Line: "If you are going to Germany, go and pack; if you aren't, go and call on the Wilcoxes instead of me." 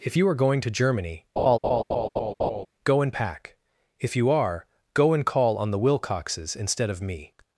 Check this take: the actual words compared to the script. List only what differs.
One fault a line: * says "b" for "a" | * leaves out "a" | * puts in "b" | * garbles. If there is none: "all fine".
* says "are" for "aren't"